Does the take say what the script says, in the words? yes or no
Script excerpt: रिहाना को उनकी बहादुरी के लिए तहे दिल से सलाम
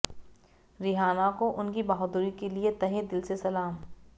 yes